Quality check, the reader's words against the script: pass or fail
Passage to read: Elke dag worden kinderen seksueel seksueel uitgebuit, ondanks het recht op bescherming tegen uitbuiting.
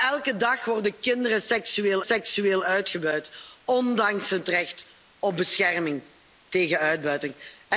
pass